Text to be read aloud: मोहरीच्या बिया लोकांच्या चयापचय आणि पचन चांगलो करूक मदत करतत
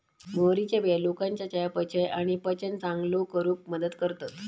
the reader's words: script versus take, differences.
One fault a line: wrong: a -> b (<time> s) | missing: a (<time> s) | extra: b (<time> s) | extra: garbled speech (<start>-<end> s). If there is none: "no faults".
no faults